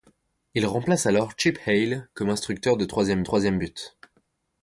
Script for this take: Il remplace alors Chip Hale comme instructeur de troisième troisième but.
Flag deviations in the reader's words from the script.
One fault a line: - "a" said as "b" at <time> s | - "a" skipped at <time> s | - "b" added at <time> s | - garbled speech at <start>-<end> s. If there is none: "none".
none